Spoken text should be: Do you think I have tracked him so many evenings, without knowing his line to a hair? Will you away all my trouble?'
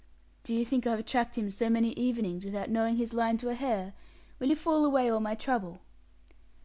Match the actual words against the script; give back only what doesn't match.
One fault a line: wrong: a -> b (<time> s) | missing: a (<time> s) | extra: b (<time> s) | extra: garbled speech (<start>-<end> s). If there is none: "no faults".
extra: fool (4.6 s)